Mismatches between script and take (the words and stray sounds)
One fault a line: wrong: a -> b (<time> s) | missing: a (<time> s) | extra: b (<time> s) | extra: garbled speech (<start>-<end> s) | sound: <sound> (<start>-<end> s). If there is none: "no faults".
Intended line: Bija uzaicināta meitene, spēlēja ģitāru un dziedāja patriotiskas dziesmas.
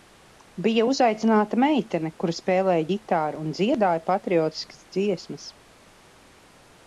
extra: kura (2.2 s)